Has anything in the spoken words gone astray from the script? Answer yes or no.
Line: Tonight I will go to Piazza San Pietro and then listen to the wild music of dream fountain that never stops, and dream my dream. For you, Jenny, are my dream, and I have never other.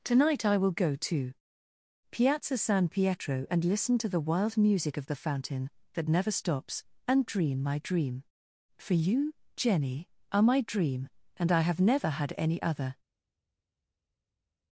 yes